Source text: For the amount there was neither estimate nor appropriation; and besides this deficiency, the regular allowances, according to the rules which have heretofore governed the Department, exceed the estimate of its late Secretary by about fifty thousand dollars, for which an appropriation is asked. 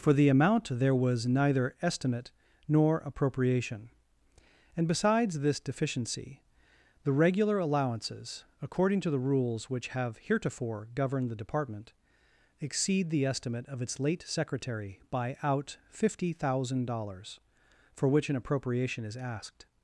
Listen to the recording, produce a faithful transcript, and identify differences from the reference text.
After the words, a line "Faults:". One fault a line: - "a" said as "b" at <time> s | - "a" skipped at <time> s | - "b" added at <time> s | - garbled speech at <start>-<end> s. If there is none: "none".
For the amount there was neither estimate nor appropriation; and besides this deficiency, the regular allowances, according to the rules which have heretofore governed the Department, exceed the estimate of its late Secretary by out fifty thousand dollars, for which an appropriation is asked.
Faults:
- "about" said as "out" at 15.4 s